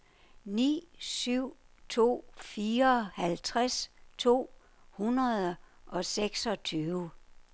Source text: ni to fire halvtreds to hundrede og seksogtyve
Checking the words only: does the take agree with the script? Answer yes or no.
no